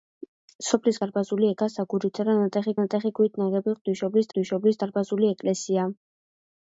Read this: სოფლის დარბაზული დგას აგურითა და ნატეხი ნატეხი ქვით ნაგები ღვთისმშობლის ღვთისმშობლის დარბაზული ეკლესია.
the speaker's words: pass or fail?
pass